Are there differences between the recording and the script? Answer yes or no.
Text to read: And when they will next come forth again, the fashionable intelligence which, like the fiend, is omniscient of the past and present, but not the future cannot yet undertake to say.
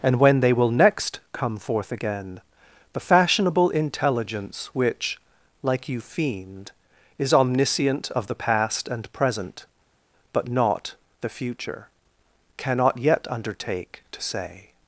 yes